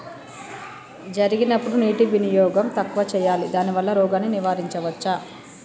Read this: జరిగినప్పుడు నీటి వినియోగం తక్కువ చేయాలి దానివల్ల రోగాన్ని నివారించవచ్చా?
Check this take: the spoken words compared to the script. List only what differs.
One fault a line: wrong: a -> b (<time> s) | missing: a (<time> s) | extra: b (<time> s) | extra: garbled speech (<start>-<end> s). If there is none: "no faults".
no faults